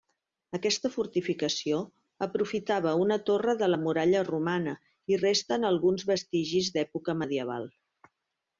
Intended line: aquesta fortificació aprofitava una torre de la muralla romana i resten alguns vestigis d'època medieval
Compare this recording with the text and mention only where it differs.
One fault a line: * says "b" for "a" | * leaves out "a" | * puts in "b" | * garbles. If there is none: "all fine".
all fine